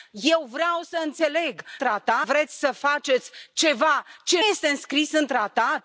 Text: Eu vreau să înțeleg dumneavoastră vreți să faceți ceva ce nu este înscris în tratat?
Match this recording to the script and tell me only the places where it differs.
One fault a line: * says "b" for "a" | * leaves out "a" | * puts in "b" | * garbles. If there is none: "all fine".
* says "tratat" for "dumneavoastră"
* leaves out "nu"